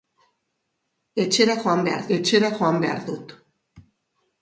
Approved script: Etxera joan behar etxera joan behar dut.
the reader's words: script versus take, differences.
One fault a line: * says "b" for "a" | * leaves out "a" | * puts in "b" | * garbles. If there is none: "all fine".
all fine